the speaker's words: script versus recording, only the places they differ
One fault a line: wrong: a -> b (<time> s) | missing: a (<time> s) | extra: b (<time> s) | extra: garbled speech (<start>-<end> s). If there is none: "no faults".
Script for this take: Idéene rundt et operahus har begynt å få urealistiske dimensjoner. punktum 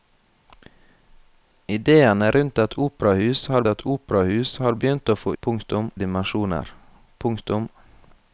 extra: et operahus har (3.7 s)
wrong: urealistiske -> punktum (5.4 s)